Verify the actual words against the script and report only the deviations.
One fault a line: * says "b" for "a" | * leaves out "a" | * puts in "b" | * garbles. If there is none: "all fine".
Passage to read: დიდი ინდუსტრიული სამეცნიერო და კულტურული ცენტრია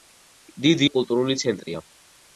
* leaves out "ინდუსტრიული სამეცნიერო"